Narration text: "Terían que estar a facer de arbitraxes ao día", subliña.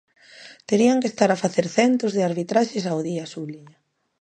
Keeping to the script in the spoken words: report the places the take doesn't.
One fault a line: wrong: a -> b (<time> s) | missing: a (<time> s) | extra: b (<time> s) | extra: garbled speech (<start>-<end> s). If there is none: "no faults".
extra: centos (1.8 s)